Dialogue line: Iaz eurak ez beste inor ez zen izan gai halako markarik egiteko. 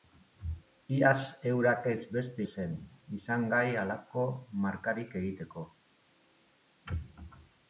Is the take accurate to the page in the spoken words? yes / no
no